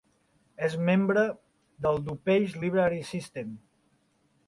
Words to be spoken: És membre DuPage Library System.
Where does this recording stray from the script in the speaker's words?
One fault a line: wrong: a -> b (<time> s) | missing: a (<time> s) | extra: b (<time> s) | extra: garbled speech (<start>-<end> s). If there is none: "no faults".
extra: del (1.9 s)